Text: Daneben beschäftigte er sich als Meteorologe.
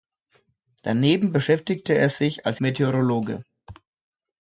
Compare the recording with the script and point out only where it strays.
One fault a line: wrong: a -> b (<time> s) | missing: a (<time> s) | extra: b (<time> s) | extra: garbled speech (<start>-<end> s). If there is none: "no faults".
no faults